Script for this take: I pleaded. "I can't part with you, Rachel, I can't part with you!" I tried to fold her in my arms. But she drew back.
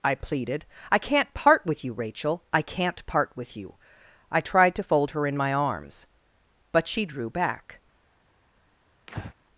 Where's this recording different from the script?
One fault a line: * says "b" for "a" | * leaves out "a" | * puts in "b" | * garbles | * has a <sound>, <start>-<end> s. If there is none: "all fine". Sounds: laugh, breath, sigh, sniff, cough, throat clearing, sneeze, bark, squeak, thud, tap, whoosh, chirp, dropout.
* has a breath, 9.1-9.3 s